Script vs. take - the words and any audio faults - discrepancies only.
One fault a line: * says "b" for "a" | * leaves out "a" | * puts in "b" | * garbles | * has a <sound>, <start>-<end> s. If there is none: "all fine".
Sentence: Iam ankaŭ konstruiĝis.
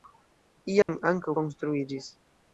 * has a dropout, 0.8-0.9 s